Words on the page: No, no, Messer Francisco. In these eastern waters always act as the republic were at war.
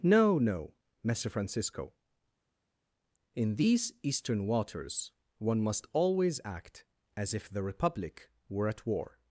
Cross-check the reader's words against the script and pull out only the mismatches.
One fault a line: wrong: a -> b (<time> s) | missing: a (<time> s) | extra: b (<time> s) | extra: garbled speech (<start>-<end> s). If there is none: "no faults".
extra: one must (5.4 s)
extra: if (7.3 s)